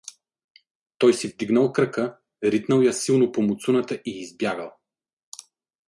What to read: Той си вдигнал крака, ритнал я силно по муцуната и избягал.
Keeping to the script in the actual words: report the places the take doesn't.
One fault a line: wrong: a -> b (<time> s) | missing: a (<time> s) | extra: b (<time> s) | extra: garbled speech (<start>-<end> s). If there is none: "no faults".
no faults